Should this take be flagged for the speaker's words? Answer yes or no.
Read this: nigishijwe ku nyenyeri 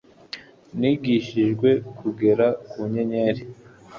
yes